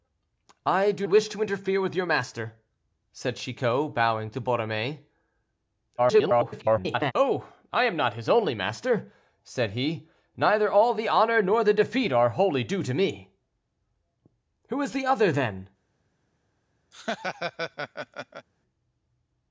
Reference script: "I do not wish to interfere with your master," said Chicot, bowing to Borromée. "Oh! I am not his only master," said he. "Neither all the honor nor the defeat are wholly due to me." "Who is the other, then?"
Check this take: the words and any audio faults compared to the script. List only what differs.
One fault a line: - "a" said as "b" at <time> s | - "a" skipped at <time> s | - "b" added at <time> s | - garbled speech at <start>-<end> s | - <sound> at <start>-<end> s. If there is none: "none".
- "not" skipped at 1.1 s
- garbled speech at 6.0-7.1 s
- laugh at 16.9-18.5 s